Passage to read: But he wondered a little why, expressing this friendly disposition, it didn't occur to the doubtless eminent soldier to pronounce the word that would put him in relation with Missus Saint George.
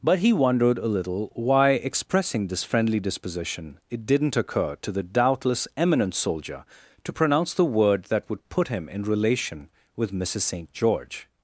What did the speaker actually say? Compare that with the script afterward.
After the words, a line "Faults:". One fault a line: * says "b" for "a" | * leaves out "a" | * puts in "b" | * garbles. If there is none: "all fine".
But he wondered a little why, expressing this friendly disposition, it didn't occur to the doubtless eminent soldier to pronounce the word that would put him in relation with Missus Saint George.
Faults:
all fine